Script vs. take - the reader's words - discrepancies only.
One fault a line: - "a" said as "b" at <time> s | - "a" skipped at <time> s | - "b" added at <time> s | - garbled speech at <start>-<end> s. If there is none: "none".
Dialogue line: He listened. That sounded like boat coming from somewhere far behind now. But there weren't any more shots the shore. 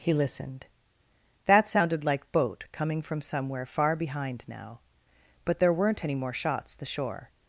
none